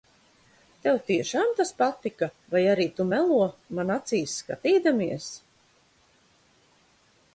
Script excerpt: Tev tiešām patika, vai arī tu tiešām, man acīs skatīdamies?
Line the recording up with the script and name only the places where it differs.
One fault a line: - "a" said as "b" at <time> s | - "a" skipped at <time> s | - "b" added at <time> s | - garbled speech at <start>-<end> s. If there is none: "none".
- "tas" added at 1.6 s
- "tiešām" said as "melo" at 3.1 s